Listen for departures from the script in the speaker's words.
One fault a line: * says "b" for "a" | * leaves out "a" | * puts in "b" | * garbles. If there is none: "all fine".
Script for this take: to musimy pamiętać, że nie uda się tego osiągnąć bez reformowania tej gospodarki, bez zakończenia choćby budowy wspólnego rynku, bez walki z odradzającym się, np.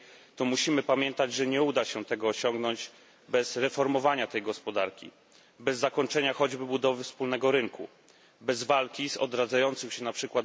all fine